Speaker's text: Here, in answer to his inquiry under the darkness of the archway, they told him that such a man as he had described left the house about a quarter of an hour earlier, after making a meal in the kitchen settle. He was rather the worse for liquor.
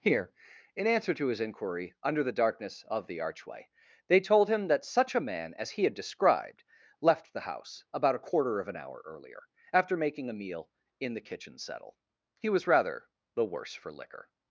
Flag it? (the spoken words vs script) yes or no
no